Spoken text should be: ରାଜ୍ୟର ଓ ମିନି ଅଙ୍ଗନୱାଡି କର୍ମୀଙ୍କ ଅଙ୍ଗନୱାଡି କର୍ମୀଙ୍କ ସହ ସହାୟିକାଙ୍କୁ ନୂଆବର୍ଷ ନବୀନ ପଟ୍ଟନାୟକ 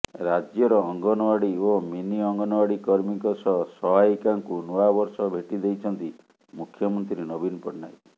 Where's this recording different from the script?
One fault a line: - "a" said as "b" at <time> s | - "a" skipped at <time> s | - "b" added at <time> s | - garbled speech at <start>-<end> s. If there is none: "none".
- "ଅଙ୍ଗନୱାଡି" added at 0.8 s
- "ଅଙ୍ଗନୱାଡି କର୍ମୀଙ୍କ" skipped at 3.3 s
- "ଭେଟି ଦେଇଛନ୍ତି ମୁଖ୍ୟମନ୍ତ୍ରୀ" added at 5.3 s